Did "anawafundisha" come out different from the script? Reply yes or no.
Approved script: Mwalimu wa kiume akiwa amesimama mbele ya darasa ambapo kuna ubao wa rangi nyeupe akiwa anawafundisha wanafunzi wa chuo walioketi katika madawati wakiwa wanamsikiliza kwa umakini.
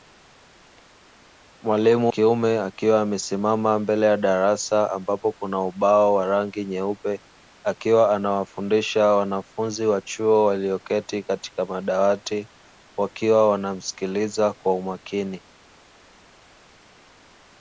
no